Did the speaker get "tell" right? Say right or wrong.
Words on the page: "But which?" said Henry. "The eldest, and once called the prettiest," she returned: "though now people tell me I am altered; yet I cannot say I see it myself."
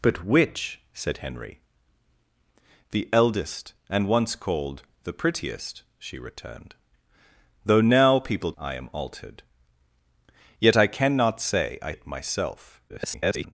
wrong